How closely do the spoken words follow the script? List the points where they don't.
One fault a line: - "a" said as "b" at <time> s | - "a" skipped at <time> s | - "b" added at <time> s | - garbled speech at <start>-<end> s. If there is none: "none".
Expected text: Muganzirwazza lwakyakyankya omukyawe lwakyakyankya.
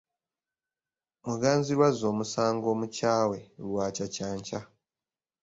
- "lwakyakyankya" said as "omusango" at 2.1 s